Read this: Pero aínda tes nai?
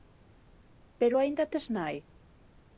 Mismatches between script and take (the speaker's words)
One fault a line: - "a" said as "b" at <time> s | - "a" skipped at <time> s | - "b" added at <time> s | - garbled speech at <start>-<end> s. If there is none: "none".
none